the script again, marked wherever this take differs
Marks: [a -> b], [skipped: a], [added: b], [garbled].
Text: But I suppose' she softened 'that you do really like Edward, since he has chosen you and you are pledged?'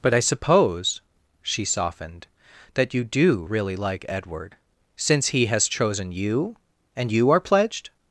But I suppose' she softened 'that you do really like Edward, since he has chosen you and you are pledged?'